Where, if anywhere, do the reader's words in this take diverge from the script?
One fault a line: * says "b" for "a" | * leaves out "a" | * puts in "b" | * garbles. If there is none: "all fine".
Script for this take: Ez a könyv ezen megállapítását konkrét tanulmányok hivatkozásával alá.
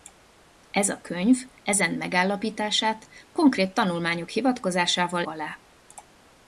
all fine